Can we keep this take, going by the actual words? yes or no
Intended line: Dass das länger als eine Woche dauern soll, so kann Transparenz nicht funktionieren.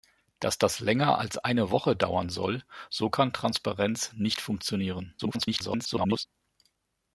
no